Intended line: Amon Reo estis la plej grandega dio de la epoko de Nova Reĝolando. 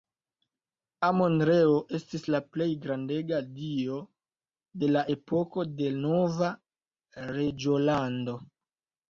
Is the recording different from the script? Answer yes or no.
no